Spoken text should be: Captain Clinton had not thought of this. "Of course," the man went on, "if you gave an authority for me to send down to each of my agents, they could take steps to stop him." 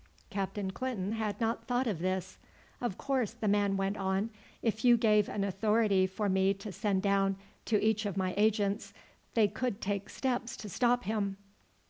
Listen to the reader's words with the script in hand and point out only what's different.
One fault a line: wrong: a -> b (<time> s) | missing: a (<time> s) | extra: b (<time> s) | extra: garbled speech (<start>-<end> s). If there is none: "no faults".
no faults